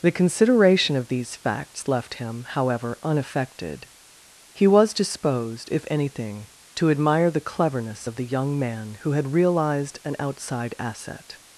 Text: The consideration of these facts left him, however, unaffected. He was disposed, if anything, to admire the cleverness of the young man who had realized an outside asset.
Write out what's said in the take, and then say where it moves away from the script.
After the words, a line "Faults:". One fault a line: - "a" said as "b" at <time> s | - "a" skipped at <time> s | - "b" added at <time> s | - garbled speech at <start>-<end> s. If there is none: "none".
The consideration of these facts left him, however, unaffected. He was disposed, if anything, to admire the cleverness of the young man who had realized an outside asset.
Faults:
none